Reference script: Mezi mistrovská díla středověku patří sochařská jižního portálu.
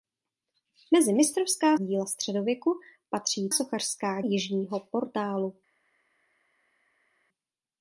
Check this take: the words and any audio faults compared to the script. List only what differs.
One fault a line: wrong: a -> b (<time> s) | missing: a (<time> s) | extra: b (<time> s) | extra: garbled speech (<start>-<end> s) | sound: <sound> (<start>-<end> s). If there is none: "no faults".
no faults